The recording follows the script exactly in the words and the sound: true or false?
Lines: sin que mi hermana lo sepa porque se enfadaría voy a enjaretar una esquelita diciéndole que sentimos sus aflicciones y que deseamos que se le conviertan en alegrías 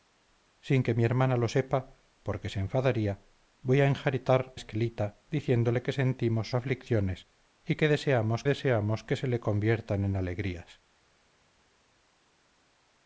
false